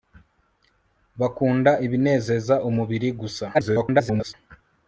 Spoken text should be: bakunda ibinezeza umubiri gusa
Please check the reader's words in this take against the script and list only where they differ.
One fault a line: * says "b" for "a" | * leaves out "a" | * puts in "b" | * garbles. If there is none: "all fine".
* garbles